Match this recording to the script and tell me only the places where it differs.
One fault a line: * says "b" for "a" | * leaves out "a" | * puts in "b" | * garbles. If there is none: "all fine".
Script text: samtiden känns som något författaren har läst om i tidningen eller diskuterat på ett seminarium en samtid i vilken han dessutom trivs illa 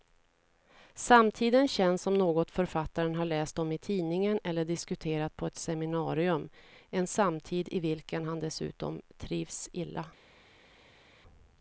all fine